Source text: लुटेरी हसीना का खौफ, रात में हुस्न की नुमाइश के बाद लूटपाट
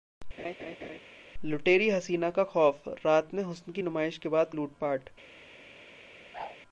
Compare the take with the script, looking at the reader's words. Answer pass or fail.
pass